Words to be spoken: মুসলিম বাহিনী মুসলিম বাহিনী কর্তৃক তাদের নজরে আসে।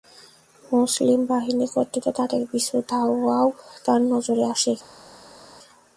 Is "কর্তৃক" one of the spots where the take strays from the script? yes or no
yes